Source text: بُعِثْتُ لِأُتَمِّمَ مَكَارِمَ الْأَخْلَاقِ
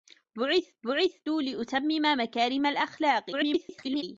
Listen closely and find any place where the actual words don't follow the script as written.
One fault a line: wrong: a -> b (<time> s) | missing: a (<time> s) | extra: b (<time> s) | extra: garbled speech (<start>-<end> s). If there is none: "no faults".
extra: بُعِثْتُ (0.8 s)
extra: garbled speech (3.3-4.0 s)